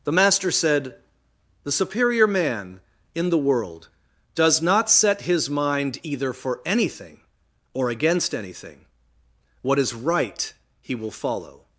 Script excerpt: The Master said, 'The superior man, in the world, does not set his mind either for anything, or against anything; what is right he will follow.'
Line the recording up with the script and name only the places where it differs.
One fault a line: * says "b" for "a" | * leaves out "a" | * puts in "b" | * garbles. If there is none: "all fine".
all fine